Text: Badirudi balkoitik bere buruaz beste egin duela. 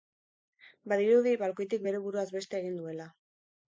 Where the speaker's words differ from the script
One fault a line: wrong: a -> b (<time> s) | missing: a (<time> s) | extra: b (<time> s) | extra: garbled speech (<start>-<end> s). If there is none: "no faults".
no faults